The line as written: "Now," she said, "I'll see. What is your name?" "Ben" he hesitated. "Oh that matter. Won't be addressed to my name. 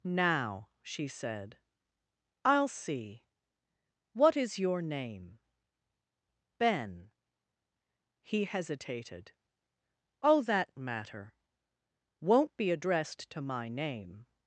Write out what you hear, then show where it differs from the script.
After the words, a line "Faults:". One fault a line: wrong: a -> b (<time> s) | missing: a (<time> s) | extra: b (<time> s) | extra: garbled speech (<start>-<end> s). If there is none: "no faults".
"Now," she said, "I'll see. What is your name?" "Ben" he hesitated. "Oh that matter. Won't be addressed to my name.
Faults:
no faults